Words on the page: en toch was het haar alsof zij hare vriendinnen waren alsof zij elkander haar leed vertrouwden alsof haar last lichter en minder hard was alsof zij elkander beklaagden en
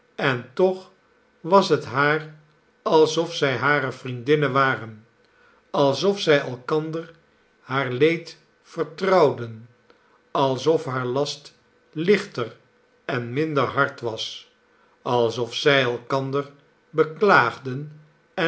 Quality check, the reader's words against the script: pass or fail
pass